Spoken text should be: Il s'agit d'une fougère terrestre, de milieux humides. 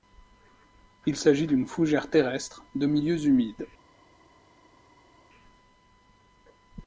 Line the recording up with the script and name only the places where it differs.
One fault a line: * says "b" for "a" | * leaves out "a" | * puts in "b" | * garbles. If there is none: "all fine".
all fine